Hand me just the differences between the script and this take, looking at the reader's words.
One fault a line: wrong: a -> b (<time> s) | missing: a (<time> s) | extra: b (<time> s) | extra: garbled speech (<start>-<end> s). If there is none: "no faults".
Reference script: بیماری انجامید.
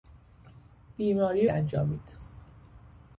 no faults